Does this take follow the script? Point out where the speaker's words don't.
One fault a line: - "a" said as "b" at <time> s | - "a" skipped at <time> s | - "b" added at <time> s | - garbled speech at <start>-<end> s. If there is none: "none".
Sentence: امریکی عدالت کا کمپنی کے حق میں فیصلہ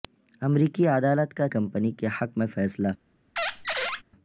none